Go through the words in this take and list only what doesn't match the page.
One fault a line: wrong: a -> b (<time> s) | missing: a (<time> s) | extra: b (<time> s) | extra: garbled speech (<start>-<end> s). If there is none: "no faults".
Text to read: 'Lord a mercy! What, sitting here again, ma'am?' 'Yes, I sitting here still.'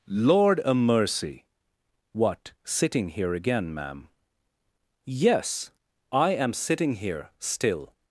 extra: am (6.3 s)